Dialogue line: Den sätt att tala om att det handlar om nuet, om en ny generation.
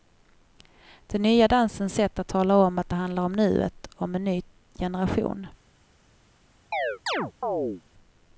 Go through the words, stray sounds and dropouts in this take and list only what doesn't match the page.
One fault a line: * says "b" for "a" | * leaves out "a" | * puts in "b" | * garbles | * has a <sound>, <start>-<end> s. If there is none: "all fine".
* puts in "nya dansens"
* has a chirp, 6.7-7.8 s